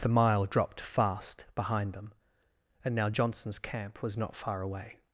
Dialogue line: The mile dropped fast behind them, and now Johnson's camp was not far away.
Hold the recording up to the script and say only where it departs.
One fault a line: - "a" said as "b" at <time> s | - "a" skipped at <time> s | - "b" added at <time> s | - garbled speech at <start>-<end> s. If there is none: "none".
none